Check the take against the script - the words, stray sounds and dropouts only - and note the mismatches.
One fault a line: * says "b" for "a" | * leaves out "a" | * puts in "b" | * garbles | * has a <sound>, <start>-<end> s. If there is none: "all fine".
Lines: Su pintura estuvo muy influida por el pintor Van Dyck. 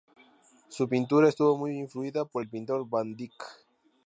all fine